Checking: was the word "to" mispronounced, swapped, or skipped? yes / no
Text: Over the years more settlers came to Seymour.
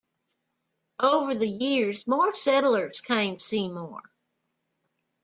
yes